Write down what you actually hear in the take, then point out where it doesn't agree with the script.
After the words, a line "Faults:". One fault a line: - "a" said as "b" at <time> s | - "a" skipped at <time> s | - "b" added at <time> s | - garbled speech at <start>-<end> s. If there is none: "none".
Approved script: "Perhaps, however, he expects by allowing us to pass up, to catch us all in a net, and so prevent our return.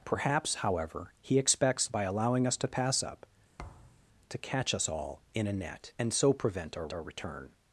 "Perhaps, however, he expects by allowing us to pass up, to catch us all in a net, and so prevent our our return.
Faults:
- "our" added at 6.9 s